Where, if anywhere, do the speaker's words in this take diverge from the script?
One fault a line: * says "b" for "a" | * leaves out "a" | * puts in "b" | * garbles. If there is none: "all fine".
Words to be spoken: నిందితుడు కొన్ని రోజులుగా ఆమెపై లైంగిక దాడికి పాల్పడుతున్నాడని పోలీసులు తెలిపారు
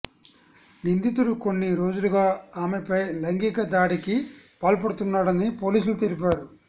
all fine